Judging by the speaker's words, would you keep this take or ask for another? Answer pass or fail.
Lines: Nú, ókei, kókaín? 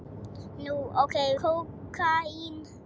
pass